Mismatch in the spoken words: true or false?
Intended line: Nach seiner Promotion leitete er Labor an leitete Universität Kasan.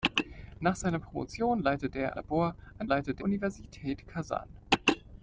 false